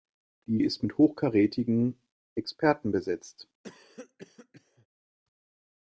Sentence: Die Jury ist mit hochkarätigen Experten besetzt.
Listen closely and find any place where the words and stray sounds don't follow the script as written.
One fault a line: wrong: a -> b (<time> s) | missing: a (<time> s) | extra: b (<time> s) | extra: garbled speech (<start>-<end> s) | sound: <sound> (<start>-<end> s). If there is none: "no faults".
missing: Jury (0.6 s)
sound: cough (3.6-4.9 s)